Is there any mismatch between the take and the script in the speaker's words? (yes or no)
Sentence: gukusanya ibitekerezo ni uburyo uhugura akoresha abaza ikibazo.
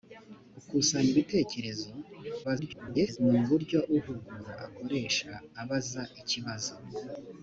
yes